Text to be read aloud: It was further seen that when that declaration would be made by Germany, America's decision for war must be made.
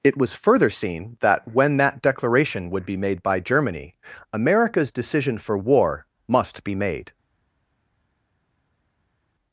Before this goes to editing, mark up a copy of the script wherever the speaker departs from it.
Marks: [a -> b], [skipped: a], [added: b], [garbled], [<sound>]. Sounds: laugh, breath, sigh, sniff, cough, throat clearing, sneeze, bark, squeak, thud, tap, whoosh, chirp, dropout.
It was further seen that when that declaration would be made by Germany, America's decision for war must be made.